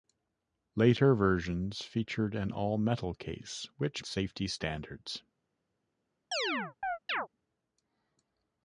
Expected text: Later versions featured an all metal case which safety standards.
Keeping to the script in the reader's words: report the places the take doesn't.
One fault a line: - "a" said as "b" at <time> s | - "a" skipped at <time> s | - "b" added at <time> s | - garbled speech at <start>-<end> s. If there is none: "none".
none